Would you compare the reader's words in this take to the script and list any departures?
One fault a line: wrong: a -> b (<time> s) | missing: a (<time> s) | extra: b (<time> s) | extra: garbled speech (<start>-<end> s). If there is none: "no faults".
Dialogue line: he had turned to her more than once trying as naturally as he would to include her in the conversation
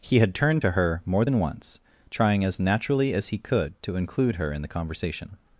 wrong: would -> could (3.4 s)